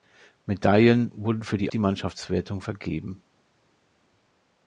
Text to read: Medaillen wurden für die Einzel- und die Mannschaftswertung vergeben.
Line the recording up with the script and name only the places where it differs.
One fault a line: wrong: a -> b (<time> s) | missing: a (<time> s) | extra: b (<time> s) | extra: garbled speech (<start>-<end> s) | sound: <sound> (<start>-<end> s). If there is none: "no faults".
missing: Einzel und (1.7 s)